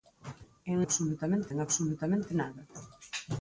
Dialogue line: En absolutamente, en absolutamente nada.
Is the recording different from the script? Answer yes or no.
no